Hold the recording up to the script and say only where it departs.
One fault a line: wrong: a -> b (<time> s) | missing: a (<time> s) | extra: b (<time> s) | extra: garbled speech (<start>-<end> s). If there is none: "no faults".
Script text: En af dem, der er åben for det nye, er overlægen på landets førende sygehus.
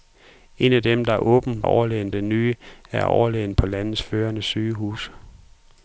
wrong: for -> overlægen (1.6 s)